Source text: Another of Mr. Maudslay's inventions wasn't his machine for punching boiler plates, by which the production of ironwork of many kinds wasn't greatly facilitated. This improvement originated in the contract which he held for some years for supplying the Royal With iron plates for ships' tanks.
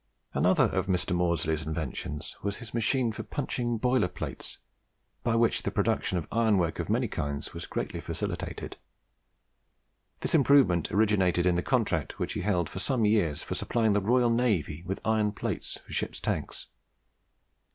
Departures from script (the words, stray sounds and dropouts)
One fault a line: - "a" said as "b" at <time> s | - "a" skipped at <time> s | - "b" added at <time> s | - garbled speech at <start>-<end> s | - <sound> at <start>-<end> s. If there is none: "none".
- "wasn't" said as "was" at 2.4 s
- "wasn't" said as "was" at 7.5 s
- "Navy" added at 14.3 s